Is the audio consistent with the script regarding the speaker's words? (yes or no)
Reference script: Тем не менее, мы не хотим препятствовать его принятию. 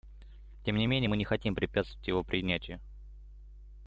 yes